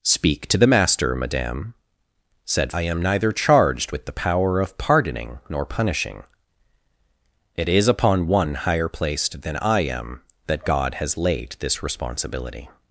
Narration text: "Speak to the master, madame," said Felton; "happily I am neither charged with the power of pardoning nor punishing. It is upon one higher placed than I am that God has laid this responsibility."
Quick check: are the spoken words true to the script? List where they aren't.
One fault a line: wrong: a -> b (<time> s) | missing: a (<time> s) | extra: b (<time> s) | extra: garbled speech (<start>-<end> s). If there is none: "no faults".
missing: Felton happily (2.7 s)